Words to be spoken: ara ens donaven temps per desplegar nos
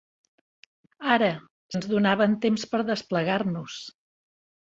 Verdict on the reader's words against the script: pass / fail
pass